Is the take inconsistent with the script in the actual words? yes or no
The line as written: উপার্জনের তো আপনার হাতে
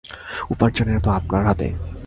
no